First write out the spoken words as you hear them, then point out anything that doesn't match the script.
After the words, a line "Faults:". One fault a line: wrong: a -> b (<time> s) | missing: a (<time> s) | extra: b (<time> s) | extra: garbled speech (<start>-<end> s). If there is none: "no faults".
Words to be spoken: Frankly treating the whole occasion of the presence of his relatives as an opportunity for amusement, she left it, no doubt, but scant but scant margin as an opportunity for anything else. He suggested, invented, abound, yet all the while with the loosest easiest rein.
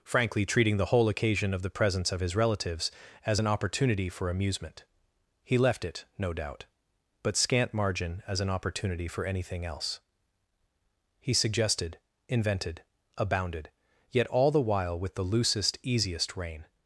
Frankly treating the whole occasion of the presence of his relatives as an opportunity for amusement, he left it, no doubt, but scant margin as an opportunity for anything else. He suggested, invented, abounded, yet all the while with the loosest easiest rein.
Faults:
wrong: she -> he (5.4 s)
missing: but scant (7.7 s)
wrong: abound -> abounded (13.2 s)